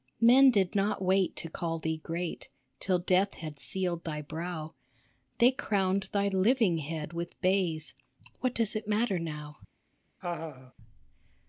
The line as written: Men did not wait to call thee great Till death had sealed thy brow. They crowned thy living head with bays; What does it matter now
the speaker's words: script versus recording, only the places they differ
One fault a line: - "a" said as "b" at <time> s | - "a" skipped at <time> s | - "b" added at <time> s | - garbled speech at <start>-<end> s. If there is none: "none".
none